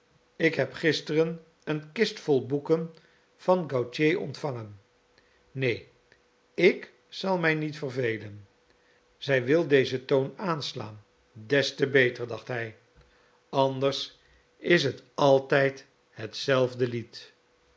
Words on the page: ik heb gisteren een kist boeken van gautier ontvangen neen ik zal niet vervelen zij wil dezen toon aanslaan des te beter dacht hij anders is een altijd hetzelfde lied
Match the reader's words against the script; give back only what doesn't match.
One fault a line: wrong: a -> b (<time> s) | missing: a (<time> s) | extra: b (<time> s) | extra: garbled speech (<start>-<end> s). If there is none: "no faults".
extra: vol (2.2 s)
extra: mij (7.4 s)
wrong: een -> het (14.8 s)